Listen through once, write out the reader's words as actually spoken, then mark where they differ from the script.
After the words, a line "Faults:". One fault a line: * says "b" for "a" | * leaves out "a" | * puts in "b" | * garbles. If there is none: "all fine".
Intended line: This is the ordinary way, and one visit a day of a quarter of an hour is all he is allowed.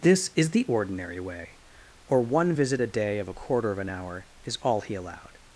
This is the ordinary way, or one visit a day of a quarter of an hour is all he allowed.
Faults:
* says "or" for "and"
* leaves out "is"